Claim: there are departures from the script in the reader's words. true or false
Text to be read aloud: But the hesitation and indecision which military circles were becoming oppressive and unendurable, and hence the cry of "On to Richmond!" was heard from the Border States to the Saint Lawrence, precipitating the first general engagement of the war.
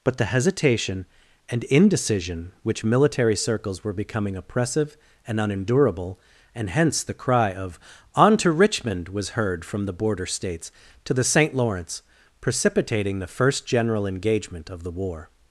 false